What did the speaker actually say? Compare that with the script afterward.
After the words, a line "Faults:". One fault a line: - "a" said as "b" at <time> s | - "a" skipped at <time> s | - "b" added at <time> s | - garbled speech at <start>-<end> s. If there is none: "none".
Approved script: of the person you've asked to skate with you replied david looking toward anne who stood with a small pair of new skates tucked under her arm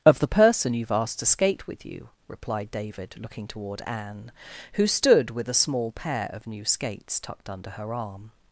of the person you've asked to skate with you replied david looking toward anne who stood with a small pair of new skates tucked under her arm
Faults:
none